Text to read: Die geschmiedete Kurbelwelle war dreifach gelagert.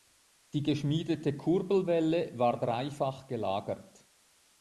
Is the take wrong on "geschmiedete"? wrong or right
right